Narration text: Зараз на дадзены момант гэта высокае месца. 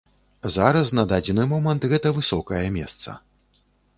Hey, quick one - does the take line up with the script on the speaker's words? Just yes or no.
yes